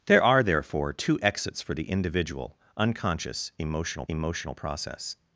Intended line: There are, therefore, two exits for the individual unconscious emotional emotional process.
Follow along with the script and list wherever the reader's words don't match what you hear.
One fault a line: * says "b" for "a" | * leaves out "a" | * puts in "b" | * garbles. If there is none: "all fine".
all fine